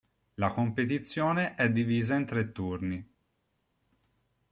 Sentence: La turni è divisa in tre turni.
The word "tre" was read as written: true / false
true